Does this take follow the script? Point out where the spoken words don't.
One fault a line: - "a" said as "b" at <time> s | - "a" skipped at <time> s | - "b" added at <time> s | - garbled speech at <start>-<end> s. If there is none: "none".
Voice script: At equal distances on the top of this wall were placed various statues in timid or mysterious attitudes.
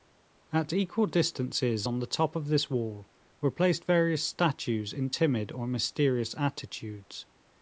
none